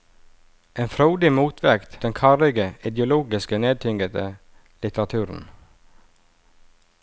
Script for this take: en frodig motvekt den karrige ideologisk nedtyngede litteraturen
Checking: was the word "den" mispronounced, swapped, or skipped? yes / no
no